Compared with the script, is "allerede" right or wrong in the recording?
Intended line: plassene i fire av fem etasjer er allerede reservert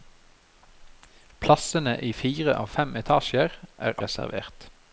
wrong